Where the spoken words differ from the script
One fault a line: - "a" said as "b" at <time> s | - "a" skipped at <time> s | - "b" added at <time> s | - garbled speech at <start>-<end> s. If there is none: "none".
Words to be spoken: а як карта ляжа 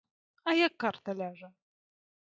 none